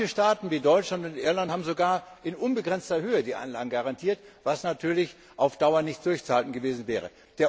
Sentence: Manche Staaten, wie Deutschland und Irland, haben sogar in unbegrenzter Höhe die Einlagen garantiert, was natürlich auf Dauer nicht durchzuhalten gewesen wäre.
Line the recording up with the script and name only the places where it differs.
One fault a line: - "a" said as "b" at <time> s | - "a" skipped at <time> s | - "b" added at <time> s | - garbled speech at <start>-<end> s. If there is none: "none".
none